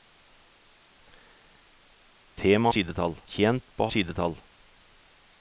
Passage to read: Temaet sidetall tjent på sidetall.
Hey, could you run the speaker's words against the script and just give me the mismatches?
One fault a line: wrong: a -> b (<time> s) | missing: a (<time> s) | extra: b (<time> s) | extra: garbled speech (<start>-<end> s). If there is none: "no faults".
no faults